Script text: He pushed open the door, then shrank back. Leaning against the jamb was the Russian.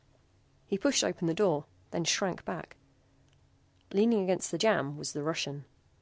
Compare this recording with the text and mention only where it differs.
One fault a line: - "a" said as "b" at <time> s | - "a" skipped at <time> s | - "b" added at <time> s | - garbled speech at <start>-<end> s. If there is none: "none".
none